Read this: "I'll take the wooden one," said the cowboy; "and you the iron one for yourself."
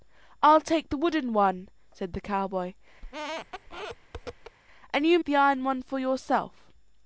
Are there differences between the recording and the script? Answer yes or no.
no